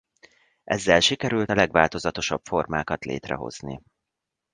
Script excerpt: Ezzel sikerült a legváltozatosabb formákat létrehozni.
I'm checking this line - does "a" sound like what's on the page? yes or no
yes